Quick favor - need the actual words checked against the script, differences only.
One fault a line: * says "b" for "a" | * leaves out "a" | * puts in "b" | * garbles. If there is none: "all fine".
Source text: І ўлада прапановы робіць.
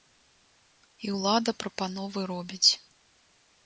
all fine